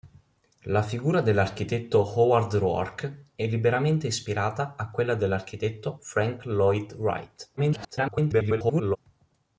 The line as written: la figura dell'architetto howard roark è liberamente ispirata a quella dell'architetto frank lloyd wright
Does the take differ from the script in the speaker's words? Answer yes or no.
yes